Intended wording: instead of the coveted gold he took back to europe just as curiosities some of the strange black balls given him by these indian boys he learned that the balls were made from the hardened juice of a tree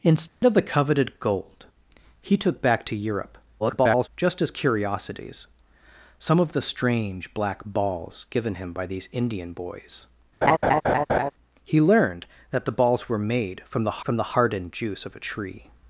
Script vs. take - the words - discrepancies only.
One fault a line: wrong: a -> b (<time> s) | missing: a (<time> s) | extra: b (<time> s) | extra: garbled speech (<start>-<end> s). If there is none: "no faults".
extra: garbled speech (3.6-4.1 s)
extra: from the (14.0 s)